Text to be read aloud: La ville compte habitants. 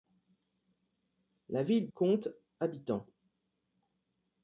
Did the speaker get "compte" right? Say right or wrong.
right